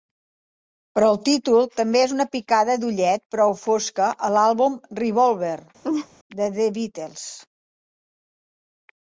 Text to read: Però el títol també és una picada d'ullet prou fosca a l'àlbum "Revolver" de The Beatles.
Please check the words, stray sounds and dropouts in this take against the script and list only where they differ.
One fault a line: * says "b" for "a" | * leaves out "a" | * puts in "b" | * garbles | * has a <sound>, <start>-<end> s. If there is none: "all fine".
* has a laugh, 5.8-6.1 s